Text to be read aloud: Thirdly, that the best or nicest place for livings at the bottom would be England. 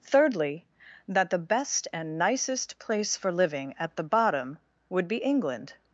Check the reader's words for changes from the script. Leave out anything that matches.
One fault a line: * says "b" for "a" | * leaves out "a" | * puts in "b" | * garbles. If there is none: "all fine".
* says "and" for "or"
* says "living" for "livings"